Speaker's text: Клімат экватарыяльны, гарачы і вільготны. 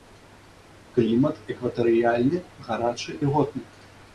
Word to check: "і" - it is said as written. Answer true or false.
false